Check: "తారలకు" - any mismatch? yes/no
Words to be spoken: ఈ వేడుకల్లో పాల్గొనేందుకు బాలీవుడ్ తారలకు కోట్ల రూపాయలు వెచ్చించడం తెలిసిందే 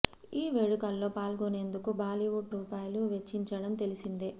yes